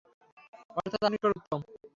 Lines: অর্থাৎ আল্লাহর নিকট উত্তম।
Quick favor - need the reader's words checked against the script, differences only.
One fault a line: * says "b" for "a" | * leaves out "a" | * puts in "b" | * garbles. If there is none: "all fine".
* leaves out "আল্লাহর"